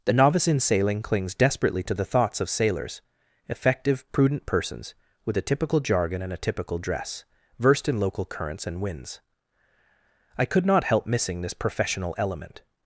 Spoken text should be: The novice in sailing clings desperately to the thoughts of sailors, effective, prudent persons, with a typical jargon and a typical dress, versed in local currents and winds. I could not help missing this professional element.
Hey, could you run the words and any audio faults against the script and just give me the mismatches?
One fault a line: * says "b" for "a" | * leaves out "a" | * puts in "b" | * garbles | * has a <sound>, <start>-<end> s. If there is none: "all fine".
all fine